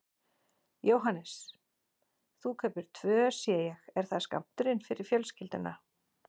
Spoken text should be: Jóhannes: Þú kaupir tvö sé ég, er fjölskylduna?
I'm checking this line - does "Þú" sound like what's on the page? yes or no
yes